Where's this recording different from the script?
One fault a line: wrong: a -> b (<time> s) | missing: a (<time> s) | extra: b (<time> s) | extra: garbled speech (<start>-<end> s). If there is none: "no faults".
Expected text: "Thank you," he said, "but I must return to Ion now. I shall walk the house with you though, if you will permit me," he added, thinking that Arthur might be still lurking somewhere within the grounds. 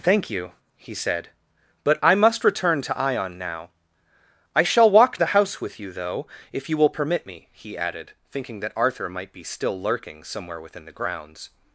no faults